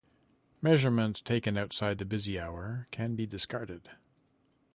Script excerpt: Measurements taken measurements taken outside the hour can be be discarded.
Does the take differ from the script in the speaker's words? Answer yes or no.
yes